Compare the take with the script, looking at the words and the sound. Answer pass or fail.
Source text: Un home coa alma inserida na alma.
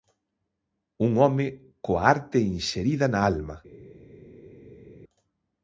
fail